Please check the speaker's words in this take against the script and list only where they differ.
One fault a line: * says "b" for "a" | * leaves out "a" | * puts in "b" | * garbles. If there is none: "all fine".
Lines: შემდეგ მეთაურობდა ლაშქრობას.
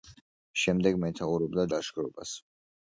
all fine